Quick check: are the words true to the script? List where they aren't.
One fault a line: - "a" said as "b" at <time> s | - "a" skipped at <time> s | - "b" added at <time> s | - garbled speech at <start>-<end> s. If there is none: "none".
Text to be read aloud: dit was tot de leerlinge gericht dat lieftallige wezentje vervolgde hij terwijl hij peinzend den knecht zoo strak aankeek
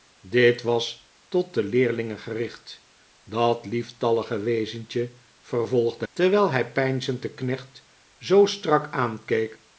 - "hij" skipped at 6.0 s